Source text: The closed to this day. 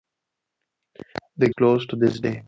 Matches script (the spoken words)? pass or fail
pass